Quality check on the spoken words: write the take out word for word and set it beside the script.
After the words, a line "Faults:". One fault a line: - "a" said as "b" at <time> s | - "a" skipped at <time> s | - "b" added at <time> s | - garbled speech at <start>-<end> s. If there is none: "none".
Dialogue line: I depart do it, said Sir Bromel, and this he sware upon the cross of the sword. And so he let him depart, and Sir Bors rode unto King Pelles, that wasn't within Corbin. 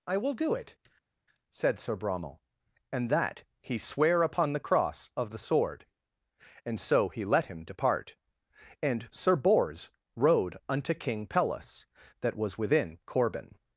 I will do it, said Sir Bromel, and that he sware upon the cross of the sword. And so he let him depart, and Sir Bors rode unto King Pelles, that was within Corbin.
Faults:
- "depart" said as "will" at 0.2 s
- "this" said as "that" at 3.1 s
- "wasn't" said as "was" at 12.4 s